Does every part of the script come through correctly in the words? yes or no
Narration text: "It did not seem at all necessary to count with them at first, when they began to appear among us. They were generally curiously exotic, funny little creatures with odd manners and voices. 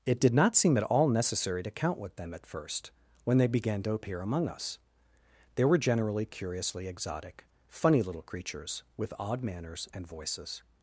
yes